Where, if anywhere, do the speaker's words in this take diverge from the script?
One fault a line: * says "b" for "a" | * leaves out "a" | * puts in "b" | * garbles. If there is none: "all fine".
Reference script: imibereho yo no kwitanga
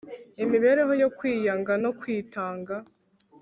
* puts in "kwiyanga"